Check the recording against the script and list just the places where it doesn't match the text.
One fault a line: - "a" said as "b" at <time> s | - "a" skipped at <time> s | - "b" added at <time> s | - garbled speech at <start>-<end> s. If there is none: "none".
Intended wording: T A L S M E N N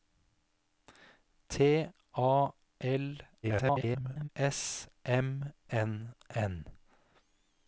- garbled speech at 3.4-4.3 s
- "E" skipped at 5.5 s